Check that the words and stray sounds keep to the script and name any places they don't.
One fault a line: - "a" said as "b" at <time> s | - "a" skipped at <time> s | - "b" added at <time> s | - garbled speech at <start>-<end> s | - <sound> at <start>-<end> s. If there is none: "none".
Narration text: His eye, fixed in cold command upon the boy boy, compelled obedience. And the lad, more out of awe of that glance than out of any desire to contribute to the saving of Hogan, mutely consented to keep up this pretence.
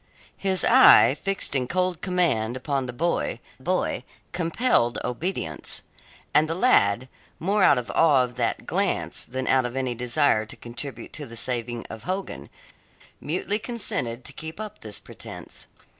none